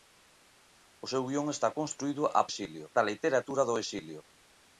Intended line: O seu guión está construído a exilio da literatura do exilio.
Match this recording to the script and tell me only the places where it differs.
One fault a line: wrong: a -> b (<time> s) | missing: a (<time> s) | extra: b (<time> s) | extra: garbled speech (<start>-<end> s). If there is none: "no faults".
no faults